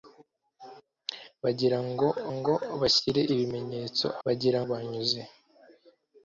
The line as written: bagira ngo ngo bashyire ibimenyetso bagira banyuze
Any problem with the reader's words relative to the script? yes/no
no